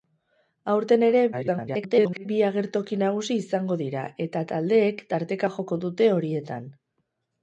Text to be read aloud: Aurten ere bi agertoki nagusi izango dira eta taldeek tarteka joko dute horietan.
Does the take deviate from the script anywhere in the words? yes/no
yes